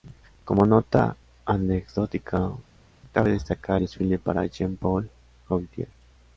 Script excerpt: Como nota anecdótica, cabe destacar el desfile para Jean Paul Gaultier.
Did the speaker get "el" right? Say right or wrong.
wrong